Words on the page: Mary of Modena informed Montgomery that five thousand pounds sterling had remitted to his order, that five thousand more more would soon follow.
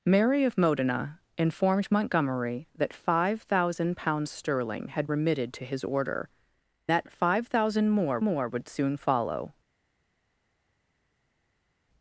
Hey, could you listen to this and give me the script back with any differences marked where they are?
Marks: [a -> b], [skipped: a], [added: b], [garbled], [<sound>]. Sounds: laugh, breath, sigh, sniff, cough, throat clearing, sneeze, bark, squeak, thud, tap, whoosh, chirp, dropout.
Mary of Modena informed Montgomery that five thousand pounds sterling had remitted to his order, that five thousand more more would soon follow.